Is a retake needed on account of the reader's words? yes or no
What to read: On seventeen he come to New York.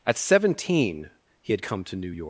yes